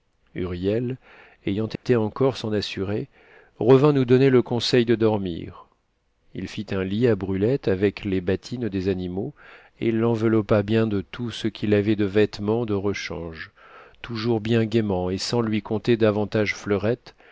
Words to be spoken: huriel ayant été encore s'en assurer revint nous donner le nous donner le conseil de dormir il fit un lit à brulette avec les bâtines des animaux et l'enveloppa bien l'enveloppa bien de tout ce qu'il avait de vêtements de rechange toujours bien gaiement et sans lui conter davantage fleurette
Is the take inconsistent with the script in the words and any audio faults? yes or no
yes